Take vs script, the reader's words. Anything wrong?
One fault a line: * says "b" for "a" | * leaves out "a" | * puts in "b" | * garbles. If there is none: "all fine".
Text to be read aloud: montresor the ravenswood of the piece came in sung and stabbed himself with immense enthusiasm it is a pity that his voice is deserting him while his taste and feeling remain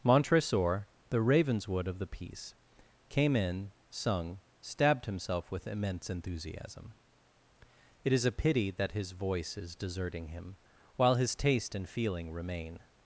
* leaves out "and"